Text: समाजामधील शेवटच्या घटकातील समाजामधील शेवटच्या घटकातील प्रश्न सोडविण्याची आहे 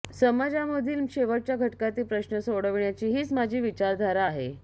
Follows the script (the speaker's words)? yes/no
no